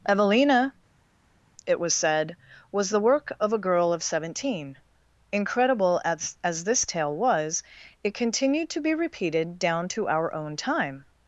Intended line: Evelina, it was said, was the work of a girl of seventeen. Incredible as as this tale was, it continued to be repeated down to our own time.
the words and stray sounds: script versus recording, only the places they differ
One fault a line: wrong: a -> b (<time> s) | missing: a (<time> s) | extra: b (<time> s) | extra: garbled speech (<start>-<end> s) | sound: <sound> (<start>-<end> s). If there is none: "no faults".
no faults